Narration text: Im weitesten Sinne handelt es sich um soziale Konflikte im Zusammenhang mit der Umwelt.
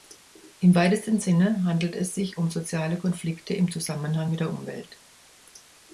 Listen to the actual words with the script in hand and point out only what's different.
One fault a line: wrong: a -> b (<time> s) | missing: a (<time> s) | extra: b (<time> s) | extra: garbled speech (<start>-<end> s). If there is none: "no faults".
no faults